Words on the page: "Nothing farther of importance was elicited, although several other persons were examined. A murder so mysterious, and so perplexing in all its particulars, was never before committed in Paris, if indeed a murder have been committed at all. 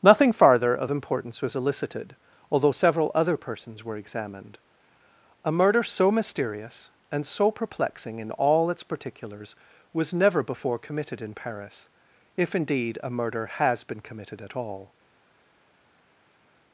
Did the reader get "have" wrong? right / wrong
wrong